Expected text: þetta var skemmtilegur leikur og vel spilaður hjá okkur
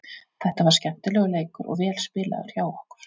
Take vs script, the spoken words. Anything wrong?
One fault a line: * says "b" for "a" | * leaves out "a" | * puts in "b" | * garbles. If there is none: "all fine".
all fine